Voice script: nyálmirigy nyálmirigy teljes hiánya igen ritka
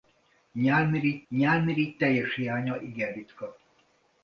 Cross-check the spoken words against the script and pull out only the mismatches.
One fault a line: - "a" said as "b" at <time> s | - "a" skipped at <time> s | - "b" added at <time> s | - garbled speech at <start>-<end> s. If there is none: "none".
none